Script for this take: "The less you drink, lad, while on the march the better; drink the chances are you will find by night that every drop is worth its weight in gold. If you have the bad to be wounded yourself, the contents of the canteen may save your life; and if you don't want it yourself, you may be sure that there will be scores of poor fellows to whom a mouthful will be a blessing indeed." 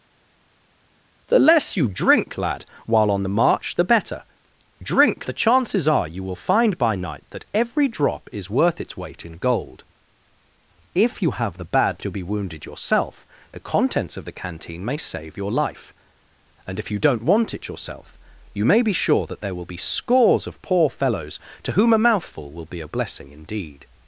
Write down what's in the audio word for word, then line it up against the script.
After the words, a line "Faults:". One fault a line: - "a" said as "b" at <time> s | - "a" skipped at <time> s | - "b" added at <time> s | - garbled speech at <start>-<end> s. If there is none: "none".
"The less you drink, lad, while on the march the better; drink the chances are you will find by night that every drop is worth its weight in gold. If you have the bad to be wounded yourself, the contents of the canteen may save your life; and if you don't want it yourself, you may be sure that there will be scores of poor fellows to whom a mouthful will be a blessing indeed."
Faults:
none